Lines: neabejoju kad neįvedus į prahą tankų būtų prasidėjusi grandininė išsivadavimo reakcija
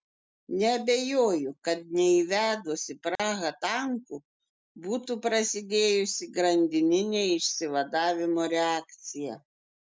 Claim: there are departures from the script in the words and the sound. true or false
true